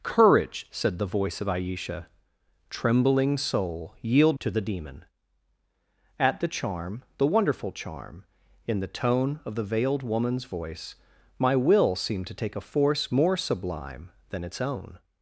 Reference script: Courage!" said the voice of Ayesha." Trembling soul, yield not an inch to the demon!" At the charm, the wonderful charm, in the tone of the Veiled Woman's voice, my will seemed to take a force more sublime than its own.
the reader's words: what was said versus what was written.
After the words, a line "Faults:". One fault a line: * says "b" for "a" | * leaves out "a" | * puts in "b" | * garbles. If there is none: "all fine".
Courage!" said the voice of Ayesha." Trembling soul, yield to the demon!" At the charm, the wonderful charm, in the tone of the Veiled Woman's voice, my will seemed to take a force more sublime than its own.
Faults:
* leaves out "not an inch"